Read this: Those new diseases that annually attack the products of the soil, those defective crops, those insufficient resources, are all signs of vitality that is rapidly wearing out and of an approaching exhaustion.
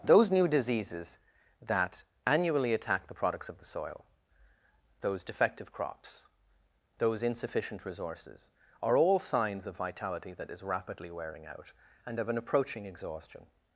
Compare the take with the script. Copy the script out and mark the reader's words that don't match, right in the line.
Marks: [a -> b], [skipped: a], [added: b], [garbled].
Those new diseases that annually attack the products of the soil, those defective crops, those insufficient resources, are all signs of vitality that is rapidly wearing out and of an approaching exhaustion.